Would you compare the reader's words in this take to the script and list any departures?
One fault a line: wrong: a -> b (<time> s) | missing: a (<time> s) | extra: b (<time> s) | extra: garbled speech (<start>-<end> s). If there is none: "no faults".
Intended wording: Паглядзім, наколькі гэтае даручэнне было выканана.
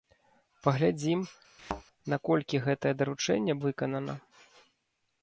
missing: было (3.5 s)